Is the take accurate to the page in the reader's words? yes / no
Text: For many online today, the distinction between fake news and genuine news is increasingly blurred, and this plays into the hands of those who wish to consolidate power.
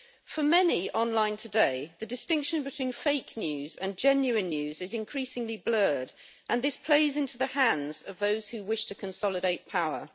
yes